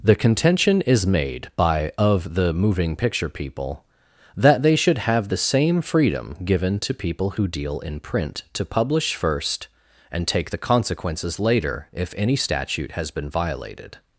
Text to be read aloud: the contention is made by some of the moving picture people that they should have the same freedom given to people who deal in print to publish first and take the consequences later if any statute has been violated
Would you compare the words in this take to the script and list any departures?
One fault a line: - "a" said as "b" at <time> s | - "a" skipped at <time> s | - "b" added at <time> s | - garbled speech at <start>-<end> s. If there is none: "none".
- "some" skipped at 1.9 s